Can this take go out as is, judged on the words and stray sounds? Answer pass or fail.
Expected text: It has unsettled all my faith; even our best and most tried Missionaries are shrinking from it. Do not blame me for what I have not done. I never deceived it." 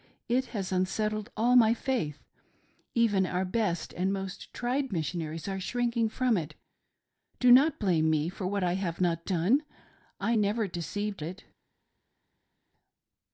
pass